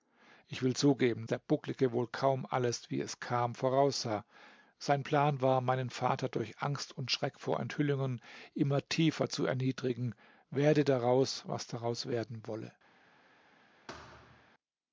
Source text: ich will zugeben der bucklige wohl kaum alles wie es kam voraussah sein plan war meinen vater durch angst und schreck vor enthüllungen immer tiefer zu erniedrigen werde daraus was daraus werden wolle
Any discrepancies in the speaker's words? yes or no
no